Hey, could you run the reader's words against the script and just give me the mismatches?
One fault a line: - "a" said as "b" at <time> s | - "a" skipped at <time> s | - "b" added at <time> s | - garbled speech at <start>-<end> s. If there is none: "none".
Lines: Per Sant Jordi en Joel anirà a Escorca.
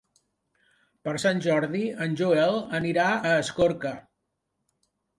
none